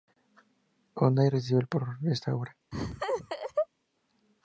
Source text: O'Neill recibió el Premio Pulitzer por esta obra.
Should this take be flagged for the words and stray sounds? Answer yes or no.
yes